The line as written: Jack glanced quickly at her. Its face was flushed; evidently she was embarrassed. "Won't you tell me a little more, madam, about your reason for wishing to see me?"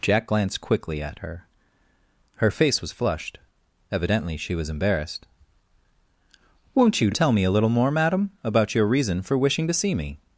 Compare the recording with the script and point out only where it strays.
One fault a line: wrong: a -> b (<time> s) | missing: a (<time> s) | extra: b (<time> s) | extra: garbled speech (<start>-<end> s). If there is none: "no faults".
wrong: Its -> Her (2.3 s)